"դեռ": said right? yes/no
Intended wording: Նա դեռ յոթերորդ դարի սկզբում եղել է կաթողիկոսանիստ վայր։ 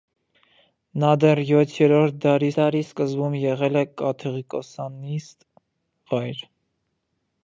yes